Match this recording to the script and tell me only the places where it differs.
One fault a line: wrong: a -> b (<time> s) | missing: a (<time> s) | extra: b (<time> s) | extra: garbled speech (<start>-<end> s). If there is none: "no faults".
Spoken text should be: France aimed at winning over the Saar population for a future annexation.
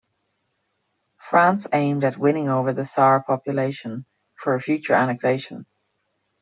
no faults